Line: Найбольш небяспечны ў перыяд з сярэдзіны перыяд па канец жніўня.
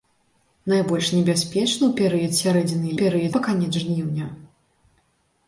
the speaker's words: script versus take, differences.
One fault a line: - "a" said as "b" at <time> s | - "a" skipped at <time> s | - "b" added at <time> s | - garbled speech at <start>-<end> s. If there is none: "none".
none